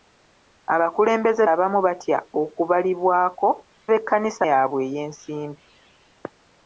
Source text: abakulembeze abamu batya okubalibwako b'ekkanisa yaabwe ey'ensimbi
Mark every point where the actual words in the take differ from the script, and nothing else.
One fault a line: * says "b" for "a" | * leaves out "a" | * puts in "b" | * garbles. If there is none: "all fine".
all fine